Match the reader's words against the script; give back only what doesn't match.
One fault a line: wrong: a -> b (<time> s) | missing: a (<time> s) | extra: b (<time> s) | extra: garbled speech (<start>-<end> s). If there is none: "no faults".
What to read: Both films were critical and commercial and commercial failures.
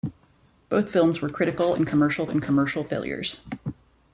no faults